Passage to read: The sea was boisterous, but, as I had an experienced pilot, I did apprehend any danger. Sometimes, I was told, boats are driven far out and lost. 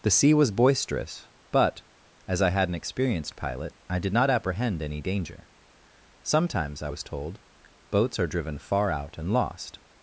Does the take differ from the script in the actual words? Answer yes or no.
yes